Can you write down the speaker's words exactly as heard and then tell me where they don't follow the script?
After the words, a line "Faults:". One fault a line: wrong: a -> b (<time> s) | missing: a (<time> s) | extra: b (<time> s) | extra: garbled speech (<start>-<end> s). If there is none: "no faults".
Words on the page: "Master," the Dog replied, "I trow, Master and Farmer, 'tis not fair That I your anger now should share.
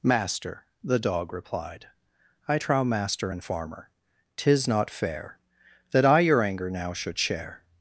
"Master," the Dog replied, "I trow, Master and Farmer, 'tis not fair That I your anger now should share.
Faults:
no faults